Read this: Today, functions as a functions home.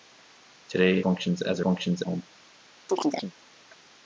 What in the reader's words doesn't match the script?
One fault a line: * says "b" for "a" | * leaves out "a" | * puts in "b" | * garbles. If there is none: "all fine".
all fine